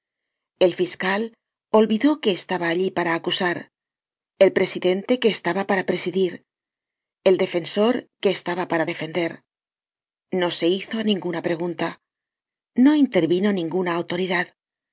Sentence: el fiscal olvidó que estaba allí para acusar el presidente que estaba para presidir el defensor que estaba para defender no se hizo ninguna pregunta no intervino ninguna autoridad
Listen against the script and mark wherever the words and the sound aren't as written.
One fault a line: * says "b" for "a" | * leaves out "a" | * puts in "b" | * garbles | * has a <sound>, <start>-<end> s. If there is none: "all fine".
all fine